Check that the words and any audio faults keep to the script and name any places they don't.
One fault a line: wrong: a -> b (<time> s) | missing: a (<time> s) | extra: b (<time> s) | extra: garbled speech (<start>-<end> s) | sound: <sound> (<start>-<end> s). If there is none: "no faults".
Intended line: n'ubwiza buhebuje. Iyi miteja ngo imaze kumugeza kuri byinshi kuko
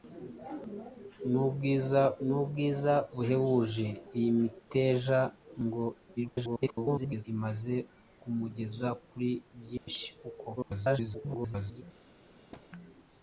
extra: n'ubwiza (2.3 s)
extra: garbled speech (6.2-7.2 s)
sound: dropout (9.8-9.9 s)
extra: garbled speech (10.6-11.8 s)
sound: thud (12.5-12.7 s)